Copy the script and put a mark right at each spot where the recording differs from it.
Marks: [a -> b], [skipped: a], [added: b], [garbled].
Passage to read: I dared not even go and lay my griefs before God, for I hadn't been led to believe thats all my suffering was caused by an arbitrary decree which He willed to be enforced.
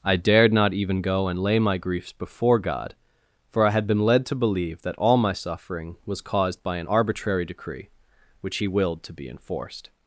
I dared not even go and lay my griefs before God, for I [hadn't -> had] been led to believe [thats -> that] all my suffering was caused by an arbitrary decree which He willed to be enforced.